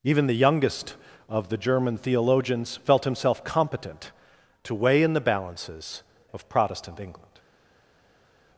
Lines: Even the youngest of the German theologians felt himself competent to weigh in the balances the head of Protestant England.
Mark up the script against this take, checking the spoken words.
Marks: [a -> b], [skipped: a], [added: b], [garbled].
Even the youngest of the German theologians felt himself competent to weigh in the balances [skipped: the head] of Protestant England.